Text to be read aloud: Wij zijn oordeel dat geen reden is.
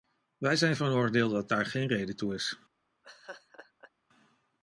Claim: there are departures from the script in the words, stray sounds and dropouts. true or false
true